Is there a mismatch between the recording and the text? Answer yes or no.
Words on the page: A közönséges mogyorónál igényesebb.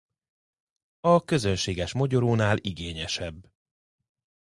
no